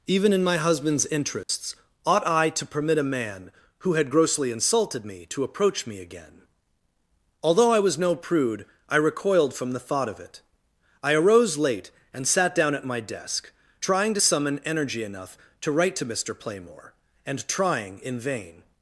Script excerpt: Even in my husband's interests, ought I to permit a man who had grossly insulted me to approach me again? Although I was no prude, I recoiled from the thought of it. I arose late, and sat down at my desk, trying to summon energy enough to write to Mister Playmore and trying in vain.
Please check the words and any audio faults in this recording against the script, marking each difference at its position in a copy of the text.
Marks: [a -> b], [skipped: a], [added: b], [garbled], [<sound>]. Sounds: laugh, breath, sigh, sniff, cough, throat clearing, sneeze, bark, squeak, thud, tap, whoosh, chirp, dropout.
Even in my husband's interests, [dropout] ought I to permit a man who had grossly insulted me to approach me again? Although I was no prude, I recoiled from the thought of it. I arose late, and sat down at my desk, trying to summon energy enough to write to Mister Playmore and trying in vain.